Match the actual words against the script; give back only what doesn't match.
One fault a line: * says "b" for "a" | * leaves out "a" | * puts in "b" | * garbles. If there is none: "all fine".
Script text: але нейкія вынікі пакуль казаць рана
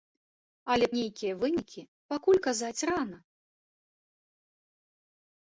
all fine